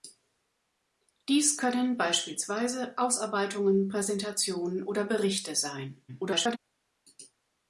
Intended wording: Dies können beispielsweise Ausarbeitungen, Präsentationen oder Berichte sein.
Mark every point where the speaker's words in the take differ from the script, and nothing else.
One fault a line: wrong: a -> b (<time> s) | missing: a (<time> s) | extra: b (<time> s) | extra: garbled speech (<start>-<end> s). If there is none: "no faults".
extra: garbled speech (6.1-6.6 s)